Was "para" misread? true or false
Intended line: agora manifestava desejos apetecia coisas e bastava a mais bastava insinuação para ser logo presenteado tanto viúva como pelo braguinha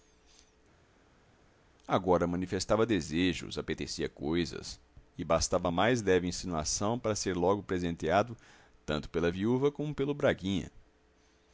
false